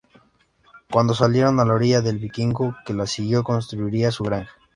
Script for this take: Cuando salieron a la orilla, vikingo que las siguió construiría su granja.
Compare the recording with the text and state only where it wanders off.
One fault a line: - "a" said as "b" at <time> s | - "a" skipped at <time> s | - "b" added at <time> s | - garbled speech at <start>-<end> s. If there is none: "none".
- "el" added at 2.0 s